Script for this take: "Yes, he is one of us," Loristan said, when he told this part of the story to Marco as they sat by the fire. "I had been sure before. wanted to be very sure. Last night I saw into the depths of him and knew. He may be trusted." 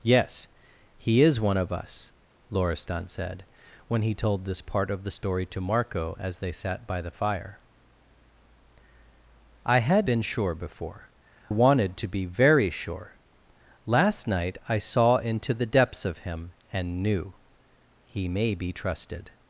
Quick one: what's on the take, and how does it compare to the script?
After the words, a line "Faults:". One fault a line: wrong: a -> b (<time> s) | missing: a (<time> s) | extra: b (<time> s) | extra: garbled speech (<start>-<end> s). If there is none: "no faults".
"Yes, he is one of us," Loristan said, when he told this part of the story to Marco as they sat by the fire. "I had been sure before. wanted to be very sure. Last night I saw into the depths of him and knew. He may be trusted."
Faults:
no faults